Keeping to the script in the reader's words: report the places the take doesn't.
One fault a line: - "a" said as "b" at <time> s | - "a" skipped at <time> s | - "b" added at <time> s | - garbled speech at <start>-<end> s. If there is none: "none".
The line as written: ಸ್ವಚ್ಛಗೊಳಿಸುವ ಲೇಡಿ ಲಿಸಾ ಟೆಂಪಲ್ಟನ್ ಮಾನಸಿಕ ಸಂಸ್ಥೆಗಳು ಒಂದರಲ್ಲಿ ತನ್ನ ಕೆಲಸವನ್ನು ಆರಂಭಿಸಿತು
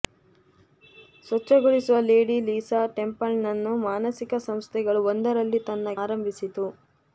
- "ಕೆಲಸವನ್ನು" skipped at 6.0 s